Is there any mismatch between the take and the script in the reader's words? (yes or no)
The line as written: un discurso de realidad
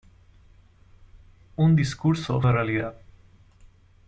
no